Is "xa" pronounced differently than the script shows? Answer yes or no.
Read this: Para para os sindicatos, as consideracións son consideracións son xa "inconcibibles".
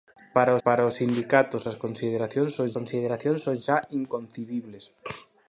no